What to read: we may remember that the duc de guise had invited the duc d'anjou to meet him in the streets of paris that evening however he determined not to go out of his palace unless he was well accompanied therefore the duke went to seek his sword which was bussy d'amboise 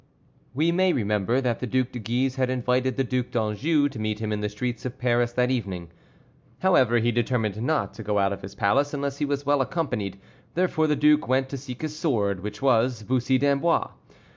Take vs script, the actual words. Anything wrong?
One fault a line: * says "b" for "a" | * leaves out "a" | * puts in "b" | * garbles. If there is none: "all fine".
all fine